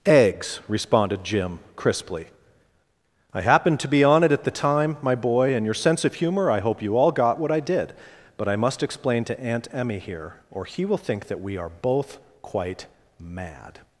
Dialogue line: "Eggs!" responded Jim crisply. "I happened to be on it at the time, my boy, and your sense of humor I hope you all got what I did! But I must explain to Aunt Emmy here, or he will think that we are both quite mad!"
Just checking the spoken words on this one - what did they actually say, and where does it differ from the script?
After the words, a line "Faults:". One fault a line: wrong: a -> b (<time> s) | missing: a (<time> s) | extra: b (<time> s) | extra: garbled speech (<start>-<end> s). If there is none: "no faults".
"Eggs!" responded Jim crisply. "I happened to be on it at the time, my boy, and your sense of humor I hope you all got what I did! But I must explain to Aunt Emmy here, or he will think that we are both quite mad!"
Faults:
no faults